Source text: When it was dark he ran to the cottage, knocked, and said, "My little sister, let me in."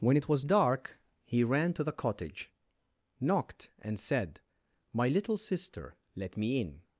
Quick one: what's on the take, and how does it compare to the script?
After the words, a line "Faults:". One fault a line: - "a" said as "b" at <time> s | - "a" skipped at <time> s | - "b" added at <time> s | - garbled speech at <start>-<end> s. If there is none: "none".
When it was dark he ran to the cottage, knocked, and said, "My little sister, let me in."
Faults:
none